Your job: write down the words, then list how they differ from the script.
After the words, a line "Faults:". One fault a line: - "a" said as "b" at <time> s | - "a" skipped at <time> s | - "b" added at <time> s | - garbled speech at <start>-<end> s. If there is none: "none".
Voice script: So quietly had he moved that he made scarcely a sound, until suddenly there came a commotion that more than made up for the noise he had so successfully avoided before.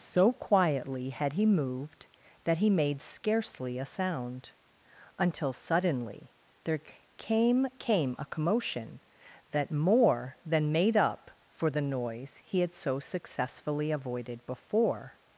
So quietly had he moved that he made scarcely a sound, until suddenly there came came a commotion that more than made up for the noise he had so successfully avoided before.
Faults:
- "came" added at 7.8 s